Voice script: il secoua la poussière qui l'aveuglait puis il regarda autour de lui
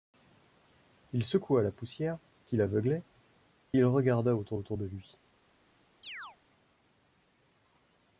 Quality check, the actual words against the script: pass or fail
fail